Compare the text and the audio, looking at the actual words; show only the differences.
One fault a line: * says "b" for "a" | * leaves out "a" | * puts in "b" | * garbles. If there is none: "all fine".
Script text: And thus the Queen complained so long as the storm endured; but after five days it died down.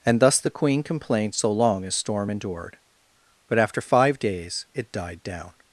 * leaves out "the"